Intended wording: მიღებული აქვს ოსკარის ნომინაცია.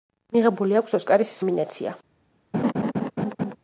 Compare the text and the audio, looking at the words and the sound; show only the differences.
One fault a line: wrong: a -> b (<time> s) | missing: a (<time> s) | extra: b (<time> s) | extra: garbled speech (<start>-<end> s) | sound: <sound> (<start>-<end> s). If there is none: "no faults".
sound: laugh (2.5-3.6 s)